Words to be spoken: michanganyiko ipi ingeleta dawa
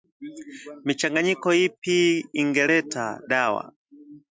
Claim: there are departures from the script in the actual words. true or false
false